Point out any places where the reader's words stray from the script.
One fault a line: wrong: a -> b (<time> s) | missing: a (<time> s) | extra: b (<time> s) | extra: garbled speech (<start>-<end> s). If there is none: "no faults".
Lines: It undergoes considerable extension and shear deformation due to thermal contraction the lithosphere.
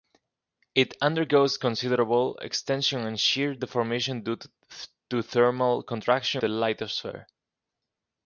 no faults